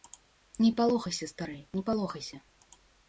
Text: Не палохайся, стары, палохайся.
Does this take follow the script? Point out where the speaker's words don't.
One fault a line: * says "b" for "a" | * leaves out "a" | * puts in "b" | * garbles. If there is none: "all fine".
* puts in "не"